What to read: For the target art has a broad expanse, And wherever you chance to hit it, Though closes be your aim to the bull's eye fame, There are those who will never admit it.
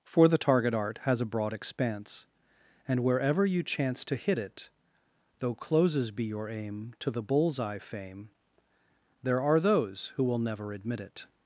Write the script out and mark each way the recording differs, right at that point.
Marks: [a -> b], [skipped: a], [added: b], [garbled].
For the target art has a broad expanse, And wherever you chance to hit it, Though closes be your aim to the bull's eye fame, There are those who will never admit it.